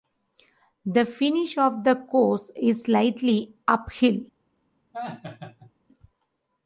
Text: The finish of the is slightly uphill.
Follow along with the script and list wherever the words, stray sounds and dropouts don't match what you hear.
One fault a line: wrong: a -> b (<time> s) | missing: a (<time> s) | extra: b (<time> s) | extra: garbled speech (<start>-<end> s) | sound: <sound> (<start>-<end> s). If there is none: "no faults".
extra: course (1.9 s)
sound: laugh (4.9-5.7 s)